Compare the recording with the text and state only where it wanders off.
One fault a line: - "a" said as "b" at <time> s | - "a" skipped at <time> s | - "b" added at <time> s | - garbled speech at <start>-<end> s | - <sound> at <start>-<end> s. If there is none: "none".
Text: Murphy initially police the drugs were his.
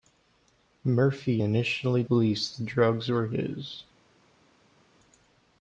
none